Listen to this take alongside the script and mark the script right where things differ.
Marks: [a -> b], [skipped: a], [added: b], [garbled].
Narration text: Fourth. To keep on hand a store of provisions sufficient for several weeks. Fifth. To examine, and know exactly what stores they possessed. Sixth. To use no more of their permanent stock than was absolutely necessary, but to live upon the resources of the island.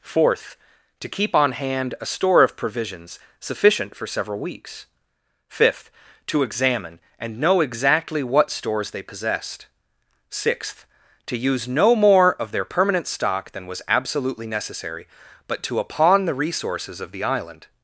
Fourth. To keep on hand a store of provisions sufficient for several weeks. Fifth. To examine, and know exactly what stores they possessed. Sixth. To use no more of their permanent stock than was absolutely necessary, but to [skipped: live] upon the resources of the island.